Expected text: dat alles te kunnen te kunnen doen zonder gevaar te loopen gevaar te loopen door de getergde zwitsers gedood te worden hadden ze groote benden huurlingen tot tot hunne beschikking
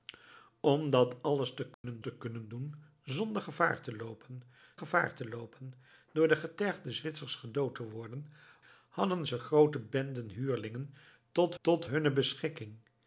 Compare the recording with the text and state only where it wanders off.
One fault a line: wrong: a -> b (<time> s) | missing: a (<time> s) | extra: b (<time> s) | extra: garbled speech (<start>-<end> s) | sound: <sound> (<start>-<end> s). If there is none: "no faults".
sound: dropout (1.7-1.8 s)